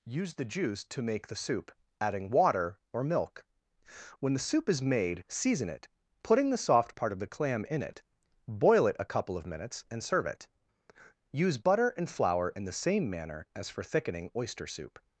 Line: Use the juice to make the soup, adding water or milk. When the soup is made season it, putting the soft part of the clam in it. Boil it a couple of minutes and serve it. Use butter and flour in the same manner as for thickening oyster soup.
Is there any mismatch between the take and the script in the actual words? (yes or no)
no